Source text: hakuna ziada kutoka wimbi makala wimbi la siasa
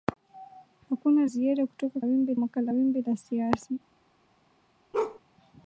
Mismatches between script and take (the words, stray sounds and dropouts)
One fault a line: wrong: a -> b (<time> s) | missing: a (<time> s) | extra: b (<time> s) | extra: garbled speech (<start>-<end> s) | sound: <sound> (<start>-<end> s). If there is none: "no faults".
sound: bark (4.9-5.2 s)